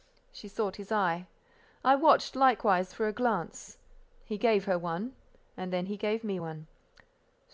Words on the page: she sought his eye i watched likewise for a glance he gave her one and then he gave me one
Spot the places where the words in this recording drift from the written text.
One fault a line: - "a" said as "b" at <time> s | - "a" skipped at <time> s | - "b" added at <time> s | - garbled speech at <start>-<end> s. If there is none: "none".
none